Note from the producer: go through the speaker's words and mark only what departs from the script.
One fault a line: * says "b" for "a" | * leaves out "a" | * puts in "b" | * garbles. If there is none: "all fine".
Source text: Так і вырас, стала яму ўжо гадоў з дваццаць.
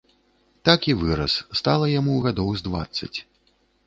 * leaves out "ўжо"